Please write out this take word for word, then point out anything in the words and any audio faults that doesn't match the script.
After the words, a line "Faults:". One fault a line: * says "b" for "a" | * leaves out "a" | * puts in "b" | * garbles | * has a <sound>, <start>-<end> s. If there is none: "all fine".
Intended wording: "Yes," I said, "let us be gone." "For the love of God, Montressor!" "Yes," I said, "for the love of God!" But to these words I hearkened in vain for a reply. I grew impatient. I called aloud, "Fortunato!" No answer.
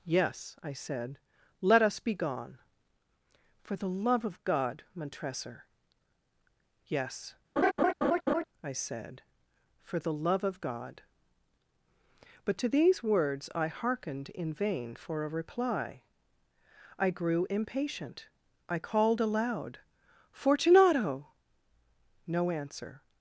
"Yes," I said, "let us be gone." "For the love of God, Montressor!" "Yes," I said, "for the love of God!" But to these words I hearkened in vain for a reply. I grew impatient. I called aloud, "Fortunato!" No answer.
Faults:
* has a laugh, 7.6-8.4 s